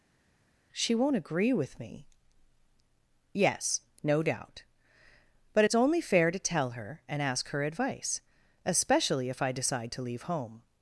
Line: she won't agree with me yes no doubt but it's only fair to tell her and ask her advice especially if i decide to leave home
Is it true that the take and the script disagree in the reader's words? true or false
false